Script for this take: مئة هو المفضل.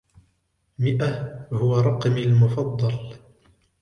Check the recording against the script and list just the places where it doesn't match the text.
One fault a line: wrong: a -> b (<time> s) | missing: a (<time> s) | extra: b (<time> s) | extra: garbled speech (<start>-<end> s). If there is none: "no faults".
extra: رقمي (1.8 s)